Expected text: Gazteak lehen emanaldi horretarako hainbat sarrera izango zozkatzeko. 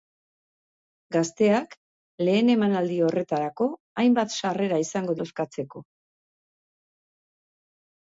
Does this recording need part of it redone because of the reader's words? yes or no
no